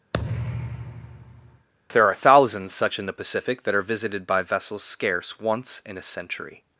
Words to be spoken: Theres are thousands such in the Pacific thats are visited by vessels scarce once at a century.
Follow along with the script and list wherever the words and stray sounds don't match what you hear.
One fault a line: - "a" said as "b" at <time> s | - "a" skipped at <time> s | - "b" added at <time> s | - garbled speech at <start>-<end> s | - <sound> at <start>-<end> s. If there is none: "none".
- thud at 0.1-1.7 s
- "Theres" said as "There" at 1.9 s
- "thats" said as "that" at 3.6 s
- "at" said as "in" at 5.8 s